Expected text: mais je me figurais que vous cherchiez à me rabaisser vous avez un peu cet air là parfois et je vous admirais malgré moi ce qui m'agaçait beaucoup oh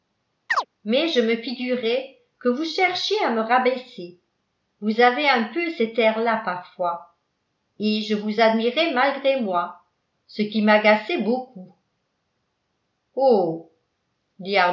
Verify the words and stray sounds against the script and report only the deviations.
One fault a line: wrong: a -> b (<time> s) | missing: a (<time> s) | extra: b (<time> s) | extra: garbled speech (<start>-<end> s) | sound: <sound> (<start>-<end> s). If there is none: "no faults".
sound: chirp (0.5-0.7 s)